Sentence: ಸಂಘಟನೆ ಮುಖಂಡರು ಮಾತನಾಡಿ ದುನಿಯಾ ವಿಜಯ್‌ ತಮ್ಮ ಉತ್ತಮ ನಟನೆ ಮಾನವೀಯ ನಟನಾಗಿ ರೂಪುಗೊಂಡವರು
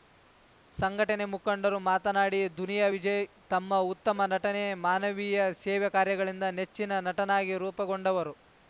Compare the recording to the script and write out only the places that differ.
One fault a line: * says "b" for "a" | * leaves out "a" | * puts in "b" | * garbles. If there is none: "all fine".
* puts in "ಸೇವೆ ಕಾರ್ಯಗಳಿಂದ ನೆಚ್ಚಿನ"